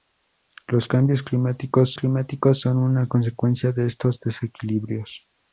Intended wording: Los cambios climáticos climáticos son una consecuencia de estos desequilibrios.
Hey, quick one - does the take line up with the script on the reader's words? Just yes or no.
yes